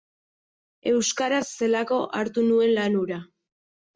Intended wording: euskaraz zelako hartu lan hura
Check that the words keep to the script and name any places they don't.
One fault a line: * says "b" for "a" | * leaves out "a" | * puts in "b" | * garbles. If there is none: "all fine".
* puts in "nuen"